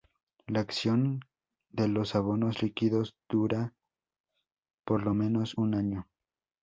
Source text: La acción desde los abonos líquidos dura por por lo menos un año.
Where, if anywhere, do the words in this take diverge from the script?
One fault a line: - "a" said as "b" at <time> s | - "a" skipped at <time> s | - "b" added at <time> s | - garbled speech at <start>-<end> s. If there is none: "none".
- "desde" said as "de" at 1.7 s
- "por" skipped at 5.0 s